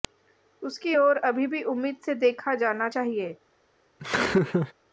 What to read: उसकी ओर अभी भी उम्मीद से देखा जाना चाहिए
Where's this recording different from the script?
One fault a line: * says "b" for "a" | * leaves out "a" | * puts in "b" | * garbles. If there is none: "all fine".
all fine